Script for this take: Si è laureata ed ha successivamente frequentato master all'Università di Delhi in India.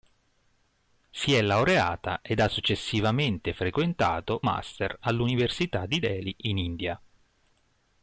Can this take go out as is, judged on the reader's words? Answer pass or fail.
pass